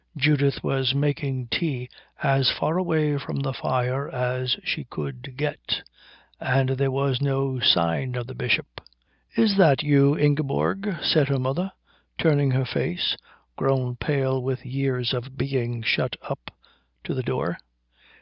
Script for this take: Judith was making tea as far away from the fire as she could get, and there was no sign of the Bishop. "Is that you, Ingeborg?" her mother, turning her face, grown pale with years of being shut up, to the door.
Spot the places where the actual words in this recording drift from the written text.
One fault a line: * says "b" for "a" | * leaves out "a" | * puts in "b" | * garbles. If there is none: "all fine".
* puts in "said"